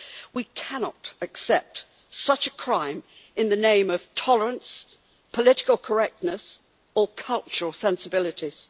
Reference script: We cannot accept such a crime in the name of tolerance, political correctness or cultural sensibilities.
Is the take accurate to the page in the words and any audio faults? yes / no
yes